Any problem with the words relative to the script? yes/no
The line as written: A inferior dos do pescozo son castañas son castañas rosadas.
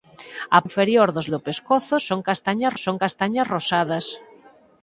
no